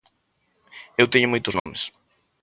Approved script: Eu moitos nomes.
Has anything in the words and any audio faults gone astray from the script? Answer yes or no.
yes